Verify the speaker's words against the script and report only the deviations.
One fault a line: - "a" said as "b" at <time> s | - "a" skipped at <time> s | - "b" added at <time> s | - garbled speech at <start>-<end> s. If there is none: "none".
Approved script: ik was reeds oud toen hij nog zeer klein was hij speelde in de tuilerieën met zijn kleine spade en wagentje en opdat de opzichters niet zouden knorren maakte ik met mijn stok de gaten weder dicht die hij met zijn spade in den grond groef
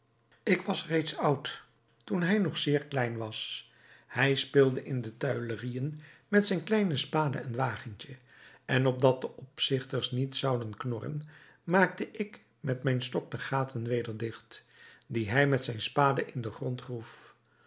none